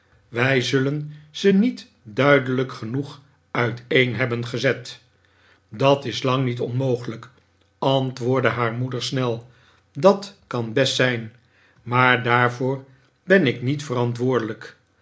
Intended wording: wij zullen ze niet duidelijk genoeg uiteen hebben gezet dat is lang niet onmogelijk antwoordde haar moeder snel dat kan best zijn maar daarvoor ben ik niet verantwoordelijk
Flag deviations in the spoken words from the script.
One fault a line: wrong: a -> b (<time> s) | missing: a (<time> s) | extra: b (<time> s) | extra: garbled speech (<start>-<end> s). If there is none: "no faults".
no faults